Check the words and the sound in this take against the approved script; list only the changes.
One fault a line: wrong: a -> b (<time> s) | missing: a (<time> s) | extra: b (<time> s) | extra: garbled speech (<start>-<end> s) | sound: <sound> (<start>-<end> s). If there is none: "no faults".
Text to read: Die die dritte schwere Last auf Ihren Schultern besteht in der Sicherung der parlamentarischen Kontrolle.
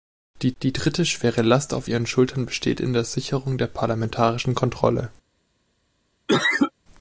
sound: cough (6.3-6.7 s)